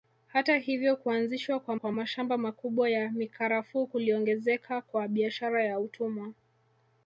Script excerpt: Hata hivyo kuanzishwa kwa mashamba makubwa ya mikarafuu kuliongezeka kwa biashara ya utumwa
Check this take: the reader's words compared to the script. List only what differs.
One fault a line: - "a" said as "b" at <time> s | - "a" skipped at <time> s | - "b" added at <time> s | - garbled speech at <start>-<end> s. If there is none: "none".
- "kwa" added at 1.7 s